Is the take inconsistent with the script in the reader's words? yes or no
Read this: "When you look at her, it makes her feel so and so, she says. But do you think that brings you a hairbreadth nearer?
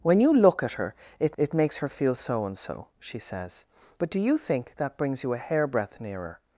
yes